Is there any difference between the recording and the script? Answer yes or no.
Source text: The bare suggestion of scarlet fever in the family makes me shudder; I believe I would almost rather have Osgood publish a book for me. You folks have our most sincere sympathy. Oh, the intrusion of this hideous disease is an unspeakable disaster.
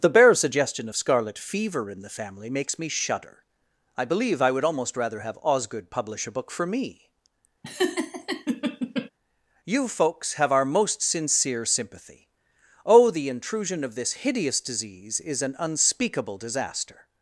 no